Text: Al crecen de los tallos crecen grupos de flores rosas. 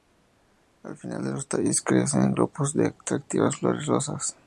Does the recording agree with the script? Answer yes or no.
no